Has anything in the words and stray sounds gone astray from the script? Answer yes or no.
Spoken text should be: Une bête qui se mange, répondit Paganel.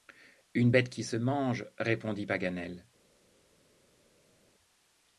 no